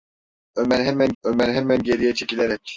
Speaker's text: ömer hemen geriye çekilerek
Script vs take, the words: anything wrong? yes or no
yes